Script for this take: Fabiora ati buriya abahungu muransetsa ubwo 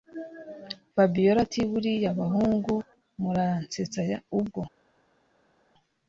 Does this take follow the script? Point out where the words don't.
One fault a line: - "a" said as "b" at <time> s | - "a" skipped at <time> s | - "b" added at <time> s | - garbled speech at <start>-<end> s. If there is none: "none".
none